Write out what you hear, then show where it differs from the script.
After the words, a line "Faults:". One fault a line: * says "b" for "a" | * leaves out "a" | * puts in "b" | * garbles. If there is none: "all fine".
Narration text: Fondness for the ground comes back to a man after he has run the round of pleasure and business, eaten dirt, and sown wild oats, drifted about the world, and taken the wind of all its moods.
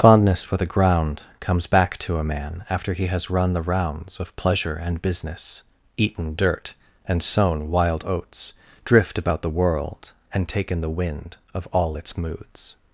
Fondness for the ground comes back to a man after he has run the rounds of pleasure and business, eaten dirt, and sown wild oats, drift about the world, and taken the wind of all its moods.
Faults:
* says "rounds" for "round"
* says "drift" for "drifted"